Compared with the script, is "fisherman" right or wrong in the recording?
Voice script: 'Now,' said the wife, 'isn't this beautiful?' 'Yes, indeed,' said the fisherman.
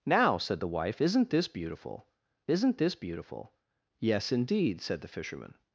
right